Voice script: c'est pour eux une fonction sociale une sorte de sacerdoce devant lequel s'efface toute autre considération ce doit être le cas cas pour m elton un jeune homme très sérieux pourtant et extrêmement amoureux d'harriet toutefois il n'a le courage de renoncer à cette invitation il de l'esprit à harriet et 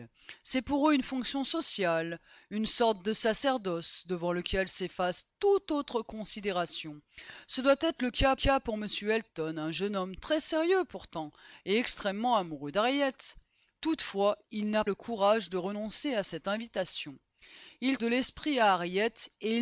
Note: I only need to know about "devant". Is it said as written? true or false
true